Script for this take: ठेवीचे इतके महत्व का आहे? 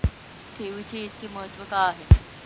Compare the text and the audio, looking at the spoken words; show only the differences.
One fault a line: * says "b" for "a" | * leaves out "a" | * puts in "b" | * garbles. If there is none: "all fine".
all fine